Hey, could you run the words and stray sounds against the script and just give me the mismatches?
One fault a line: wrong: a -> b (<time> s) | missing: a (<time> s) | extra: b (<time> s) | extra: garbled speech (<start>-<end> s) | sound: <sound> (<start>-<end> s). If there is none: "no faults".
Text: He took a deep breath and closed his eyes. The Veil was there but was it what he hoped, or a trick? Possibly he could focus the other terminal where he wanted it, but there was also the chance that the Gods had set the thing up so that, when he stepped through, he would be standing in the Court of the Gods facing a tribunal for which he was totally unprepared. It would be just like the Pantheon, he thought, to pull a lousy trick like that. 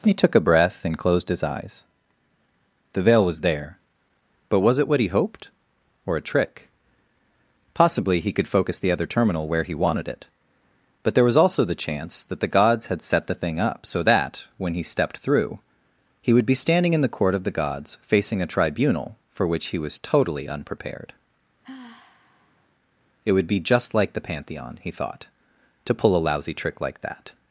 missing: deep (0.4 s)
sound: sigh (21.6-22.7 s)